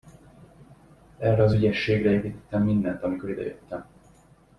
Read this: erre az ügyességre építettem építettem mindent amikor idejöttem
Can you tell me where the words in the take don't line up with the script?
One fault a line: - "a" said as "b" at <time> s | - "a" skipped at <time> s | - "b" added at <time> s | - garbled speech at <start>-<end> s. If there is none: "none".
- "építettem" skipped at 2.6 s